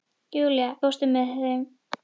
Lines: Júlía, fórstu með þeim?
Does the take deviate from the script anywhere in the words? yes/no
no